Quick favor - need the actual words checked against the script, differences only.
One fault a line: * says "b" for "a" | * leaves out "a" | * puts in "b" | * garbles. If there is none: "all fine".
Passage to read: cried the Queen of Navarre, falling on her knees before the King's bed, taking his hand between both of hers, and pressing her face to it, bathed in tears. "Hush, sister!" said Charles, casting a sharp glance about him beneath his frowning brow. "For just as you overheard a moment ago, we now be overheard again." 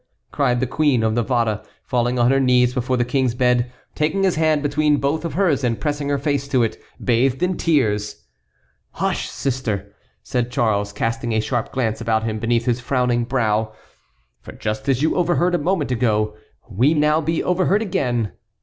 all fine